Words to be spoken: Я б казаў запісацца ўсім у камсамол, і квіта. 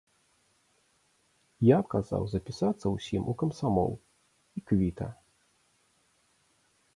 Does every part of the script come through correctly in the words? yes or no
yes